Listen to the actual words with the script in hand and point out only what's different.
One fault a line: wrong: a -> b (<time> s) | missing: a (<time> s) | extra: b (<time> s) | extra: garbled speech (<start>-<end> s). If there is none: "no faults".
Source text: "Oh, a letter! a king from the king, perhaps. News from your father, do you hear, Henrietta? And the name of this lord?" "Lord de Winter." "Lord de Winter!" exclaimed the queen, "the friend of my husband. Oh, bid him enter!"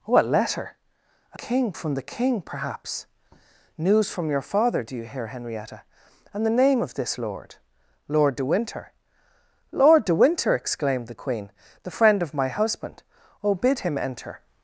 no faults